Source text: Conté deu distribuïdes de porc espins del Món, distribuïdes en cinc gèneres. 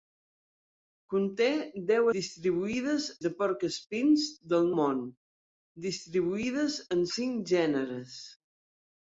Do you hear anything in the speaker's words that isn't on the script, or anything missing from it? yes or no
no